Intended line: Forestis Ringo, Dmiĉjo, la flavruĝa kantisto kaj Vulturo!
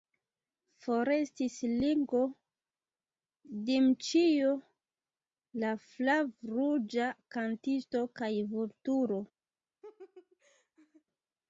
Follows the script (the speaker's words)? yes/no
yes